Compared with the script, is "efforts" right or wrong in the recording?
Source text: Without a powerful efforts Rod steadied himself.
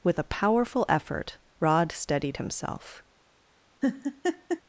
wrong